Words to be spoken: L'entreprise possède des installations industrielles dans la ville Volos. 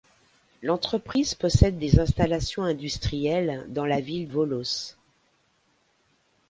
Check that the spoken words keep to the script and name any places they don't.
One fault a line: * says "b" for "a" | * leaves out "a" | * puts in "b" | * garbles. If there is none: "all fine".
all fine